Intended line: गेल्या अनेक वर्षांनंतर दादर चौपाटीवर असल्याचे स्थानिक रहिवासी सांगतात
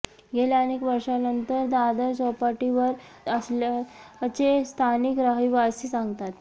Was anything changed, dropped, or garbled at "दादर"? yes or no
no